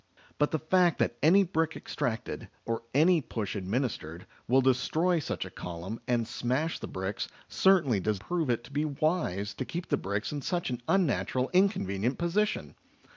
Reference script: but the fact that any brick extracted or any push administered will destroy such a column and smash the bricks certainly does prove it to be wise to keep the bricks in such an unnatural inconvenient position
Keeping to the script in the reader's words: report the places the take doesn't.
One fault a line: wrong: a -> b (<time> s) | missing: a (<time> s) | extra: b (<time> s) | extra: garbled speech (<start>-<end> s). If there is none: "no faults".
no faults